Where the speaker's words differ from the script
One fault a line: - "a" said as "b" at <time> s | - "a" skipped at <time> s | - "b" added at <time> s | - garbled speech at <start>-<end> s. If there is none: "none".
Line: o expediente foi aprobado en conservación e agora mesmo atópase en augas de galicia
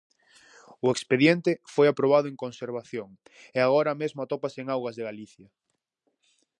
none